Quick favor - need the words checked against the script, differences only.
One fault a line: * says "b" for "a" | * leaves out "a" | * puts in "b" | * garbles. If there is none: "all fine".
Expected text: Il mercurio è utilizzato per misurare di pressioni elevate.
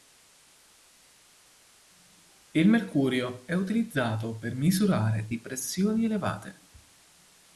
all fine